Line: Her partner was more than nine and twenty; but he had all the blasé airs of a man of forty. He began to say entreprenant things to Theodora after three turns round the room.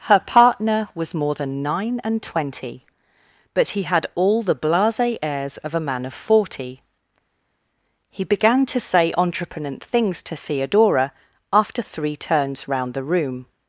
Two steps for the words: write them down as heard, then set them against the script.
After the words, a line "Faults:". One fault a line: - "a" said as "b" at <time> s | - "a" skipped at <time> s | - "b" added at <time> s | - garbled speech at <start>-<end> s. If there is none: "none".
Her partner was more than nine and twenty; but he had all the blasé airs of a man of forty. He began to say entreprenant things to Theodora after three turns round the room.
Faults:
none